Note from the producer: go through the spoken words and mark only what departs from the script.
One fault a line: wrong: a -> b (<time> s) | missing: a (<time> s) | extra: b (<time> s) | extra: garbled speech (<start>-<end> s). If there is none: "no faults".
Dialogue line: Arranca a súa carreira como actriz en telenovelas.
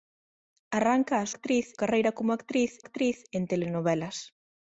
wrong: súa -> actriz (1.3 s)
extra: actriz (2.8 s)